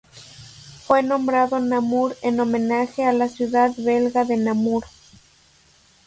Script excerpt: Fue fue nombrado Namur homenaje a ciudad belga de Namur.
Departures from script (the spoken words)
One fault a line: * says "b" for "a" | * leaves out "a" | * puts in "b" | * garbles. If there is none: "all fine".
* leaves out "fue"
* puts in "en"
* puts in "la"